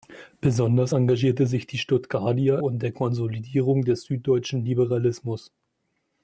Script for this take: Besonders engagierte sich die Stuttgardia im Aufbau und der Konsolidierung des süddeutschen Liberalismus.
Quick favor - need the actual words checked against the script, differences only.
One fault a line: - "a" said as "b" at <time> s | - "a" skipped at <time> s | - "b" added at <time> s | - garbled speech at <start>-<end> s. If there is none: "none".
- "im Aufbau" skipped at 2.6 s